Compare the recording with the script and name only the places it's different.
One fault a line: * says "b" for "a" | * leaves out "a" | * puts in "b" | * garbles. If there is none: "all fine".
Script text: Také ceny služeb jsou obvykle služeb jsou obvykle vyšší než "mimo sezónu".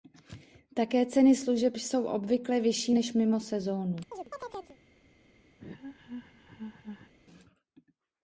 * leaves out "služeb jsou obvykle"